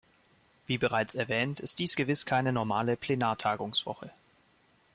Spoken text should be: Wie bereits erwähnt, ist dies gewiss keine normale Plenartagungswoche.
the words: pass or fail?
pass